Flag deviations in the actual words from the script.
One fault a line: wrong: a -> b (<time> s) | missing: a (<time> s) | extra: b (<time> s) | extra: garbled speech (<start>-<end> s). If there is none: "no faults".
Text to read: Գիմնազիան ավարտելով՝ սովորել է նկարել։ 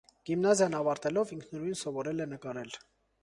extra: ինքնուրույն (1.4 s)